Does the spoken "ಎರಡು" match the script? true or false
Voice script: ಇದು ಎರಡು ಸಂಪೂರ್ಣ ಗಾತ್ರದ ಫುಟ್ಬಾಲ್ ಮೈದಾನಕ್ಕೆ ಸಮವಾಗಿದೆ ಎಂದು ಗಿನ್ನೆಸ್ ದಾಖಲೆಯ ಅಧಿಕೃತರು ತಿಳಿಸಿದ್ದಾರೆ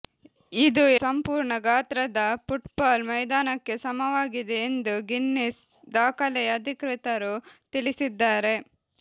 false